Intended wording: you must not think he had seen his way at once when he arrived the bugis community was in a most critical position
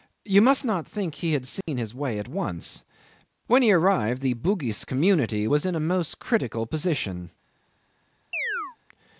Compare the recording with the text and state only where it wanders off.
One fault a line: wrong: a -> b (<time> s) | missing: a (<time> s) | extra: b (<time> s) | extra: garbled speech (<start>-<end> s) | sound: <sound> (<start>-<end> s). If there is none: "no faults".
sound: dropout (1.6-1.7 s)
sound: chirp (8.3-8.8 s)